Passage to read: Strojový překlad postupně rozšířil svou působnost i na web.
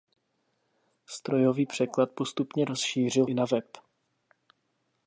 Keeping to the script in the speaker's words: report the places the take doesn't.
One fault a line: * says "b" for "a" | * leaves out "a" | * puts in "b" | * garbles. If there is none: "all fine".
* leaves out "svou působnost"